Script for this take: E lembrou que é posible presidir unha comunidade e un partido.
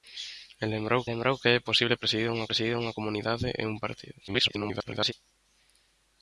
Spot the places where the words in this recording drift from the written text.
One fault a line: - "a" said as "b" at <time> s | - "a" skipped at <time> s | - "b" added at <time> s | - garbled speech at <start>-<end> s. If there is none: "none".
- "lembrou" added at 1.1 s
- "presidir unha" added at 2.5 s
- garbled speech at 4.3-5.1 s